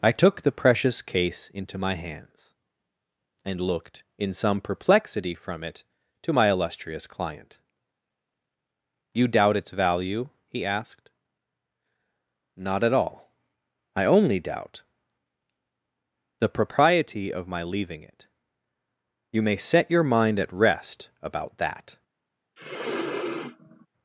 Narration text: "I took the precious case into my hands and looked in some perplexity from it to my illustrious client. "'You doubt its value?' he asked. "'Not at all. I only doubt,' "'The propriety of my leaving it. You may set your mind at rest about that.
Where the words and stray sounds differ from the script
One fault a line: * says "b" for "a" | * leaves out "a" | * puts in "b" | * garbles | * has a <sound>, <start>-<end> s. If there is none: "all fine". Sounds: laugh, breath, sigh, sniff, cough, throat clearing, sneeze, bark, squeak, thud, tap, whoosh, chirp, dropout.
* has a sniff, 22.6-23.9 s